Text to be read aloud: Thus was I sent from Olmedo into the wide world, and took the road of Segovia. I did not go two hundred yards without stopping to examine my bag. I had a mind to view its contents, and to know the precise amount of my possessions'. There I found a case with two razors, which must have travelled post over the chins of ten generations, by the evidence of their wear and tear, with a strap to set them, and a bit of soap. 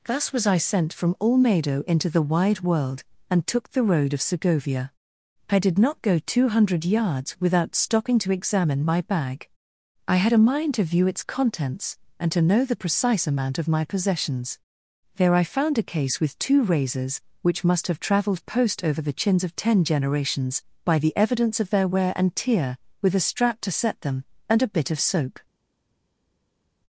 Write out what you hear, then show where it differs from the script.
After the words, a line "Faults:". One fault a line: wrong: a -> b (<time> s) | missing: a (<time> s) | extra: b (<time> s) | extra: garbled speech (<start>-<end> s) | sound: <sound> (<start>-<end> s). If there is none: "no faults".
Thus was I sent from Olmedo into the wide world, and took the road of Segovia. I did not go two hundred yards without stopping to examine my bag. I had a mind to view its contents, and to know the precise amount of my possessions'. There I found a case with two razors, which must have travelled post over the chins of ten generations, by the evidence of their wear and tear, with a strap to set them, and a bit of soap.
Faults:
no faults